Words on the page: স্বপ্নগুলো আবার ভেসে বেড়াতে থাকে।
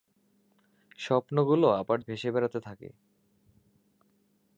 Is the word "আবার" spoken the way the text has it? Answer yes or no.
yes